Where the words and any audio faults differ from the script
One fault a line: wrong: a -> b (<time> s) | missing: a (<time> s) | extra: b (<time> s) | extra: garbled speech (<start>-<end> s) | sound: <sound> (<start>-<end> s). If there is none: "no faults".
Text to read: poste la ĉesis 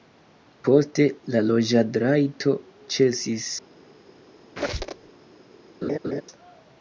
extra: loĝadrajto (1.5 s)
sound: squeak (4.6-5.1 s)
sound: laugh (5.8-6.2 s)